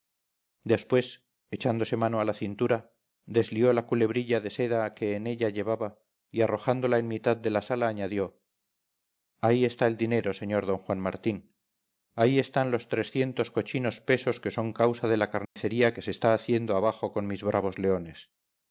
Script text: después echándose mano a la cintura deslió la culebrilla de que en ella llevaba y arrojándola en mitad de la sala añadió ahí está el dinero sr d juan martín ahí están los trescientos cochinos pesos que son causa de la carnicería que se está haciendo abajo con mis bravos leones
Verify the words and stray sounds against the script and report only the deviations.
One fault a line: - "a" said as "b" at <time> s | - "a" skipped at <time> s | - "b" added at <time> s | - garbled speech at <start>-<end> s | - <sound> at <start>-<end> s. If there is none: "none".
- "seda" added at 4.5 s
- dropout at 15.5-15.6 s